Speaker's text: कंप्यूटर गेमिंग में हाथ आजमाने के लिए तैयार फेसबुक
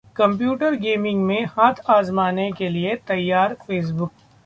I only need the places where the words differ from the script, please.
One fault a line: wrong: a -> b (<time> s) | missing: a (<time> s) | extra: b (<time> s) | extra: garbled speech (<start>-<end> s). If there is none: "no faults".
no faults